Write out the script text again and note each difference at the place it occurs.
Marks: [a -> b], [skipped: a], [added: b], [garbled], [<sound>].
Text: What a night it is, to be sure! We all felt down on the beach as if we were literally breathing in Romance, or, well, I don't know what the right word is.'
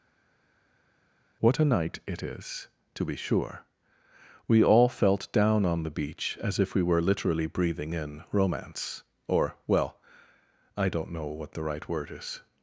What a night it is, to be sure! We all felt down on the beach as if we were literally breathing in Romance, or, well, I don't know what the right word is.'